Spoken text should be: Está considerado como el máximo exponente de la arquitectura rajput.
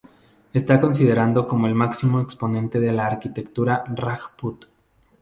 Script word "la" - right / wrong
right